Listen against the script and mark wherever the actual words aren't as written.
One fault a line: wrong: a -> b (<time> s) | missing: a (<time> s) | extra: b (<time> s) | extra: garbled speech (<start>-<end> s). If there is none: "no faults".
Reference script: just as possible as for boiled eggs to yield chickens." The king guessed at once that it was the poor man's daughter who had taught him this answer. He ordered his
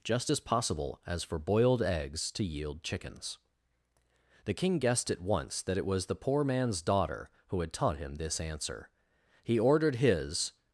no faults